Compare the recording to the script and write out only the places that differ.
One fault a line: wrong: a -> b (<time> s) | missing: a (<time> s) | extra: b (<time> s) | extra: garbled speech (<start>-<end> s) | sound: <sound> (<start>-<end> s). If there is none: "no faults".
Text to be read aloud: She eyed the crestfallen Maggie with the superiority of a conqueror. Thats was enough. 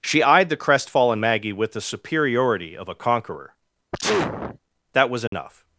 sound: sneeze (3.9-4.6 s)
wrong: Thats -> That (4.9 s)
sound: dropout (5.3-5.3 s)